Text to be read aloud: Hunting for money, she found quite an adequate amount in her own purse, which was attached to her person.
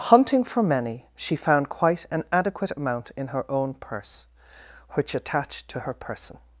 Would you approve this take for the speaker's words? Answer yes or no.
no